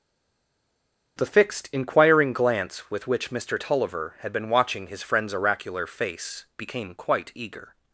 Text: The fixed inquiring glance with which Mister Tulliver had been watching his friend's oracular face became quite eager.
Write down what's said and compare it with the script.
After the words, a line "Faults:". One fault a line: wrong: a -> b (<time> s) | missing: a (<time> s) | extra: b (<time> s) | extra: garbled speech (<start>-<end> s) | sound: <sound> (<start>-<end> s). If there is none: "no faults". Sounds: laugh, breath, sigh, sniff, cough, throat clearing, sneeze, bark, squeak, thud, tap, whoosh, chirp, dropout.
The fixed inquiring glance with which Mister Tulliver had been watching his friend's oracular face became quite eager.
Faults:
no faults